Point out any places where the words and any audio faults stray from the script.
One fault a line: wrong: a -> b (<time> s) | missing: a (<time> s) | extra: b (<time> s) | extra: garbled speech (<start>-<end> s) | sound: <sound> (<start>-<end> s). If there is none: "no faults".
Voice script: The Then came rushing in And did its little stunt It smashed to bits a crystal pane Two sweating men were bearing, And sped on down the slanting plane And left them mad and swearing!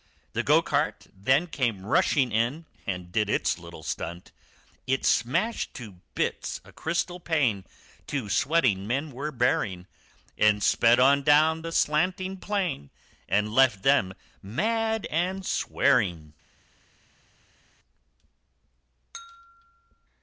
extra: Go cart (0.4 s)